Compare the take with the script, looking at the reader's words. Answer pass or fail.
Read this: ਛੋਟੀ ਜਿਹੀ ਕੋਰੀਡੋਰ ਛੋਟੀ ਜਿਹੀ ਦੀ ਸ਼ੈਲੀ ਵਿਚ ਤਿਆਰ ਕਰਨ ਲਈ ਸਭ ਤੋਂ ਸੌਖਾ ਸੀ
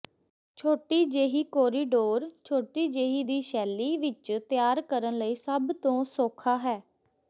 fail